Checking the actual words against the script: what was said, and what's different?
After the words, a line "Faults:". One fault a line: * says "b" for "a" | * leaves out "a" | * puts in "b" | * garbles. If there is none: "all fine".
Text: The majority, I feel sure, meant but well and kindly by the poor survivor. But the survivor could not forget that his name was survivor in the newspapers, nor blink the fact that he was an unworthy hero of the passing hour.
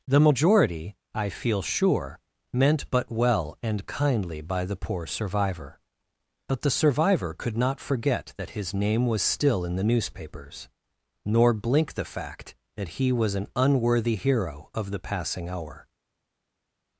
The majority, I feel sure, meant but well and kindly by the poor survivor. But the survivor could not forget that his name was still in the newspapers, nor blink the fact that he was an unworthy hero of the passing hour.
Faults:
* says "still" for "survivor"